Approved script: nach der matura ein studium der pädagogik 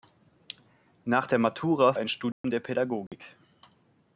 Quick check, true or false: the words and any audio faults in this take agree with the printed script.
false